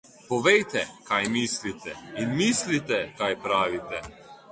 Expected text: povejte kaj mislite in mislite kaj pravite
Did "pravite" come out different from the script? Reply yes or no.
no